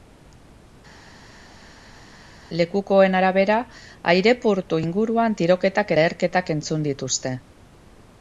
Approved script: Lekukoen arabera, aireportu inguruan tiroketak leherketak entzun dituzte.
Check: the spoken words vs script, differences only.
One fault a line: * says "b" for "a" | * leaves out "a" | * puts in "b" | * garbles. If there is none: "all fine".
all fine